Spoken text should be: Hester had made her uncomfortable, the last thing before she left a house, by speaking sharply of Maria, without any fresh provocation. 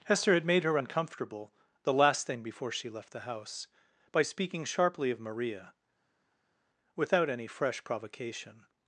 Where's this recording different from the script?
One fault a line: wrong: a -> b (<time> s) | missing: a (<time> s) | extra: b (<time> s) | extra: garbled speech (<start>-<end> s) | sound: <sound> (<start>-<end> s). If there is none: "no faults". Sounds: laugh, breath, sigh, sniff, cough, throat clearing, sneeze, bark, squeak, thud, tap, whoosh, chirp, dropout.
wrong: a -> the (3.1 s)